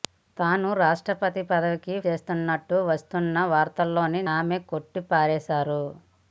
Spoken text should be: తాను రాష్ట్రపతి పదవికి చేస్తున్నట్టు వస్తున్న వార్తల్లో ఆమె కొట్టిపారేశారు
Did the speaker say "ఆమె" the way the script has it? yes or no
yes